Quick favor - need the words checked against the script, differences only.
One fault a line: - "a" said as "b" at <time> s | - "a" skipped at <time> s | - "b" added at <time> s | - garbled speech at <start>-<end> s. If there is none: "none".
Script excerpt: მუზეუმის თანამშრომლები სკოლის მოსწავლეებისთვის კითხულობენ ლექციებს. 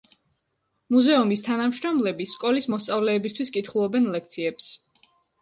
none